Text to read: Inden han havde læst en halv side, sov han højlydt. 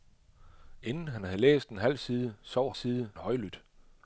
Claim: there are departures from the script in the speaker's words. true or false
true